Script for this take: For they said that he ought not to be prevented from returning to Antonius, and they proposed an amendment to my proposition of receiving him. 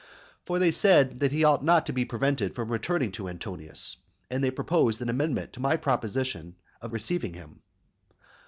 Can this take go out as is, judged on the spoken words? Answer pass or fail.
pass